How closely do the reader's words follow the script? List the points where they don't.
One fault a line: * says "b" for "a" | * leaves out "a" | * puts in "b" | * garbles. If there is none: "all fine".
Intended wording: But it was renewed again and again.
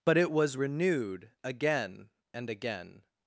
all fine